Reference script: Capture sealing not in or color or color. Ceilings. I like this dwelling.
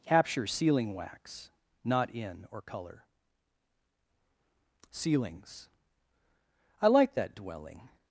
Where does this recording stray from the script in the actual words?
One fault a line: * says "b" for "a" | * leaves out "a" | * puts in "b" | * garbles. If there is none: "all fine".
* puts in "wax"
* leaves out "or color"
* says "that" for "this"